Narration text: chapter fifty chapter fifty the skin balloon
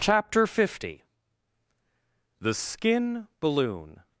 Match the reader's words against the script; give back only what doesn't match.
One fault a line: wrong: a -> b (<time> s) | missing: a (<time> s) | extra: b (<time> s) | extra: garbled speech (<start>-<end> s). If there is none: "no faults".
missing: chapter fifty (1.0 s)